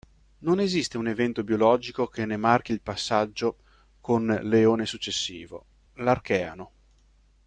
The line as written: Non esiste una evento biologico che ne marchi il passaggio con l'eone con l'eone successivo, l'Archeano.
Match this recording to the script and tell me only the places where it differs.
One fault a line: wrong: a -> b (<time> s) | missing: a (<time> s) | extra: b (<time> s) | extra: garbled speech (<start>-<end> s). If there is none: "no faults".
wrong: una -> un (1.0 s)
missing: con l'eone (4.8 s)